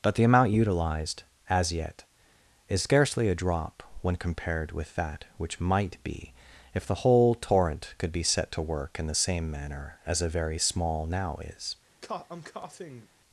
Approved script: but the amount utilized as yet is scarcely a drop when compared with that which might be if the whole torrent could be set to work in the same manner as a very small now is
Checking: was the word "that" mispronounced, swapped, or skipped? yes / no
no